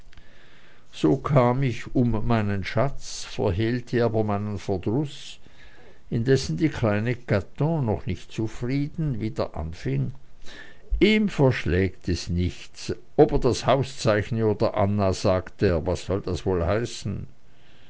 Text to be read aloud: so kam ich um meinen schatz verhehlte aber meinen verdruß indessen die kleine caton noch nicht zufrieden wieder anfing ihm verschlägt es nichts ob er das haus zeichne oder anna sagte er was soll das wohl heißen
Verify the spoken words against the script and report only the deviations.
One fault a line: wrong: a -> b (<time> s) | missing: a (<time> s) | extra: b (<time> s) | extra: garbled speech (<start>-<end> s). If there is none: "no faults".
no faults